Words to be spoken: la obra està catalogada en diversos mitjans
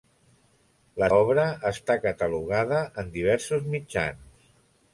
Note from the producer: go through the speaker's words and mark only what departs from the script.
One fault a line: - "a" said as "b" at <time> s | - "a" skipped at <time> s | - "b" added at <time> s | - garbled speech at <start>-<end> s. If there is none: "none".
none